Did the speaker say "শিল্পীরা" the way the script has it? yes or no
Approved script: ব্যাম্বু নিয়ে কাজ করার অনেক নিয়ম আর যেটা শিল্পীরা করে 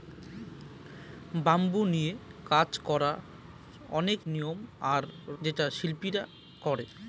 yes